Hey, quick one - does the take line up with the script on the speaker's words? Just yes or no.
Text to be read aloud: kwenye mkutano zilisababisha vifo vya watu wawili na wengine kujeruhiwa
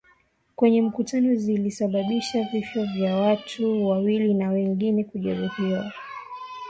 yes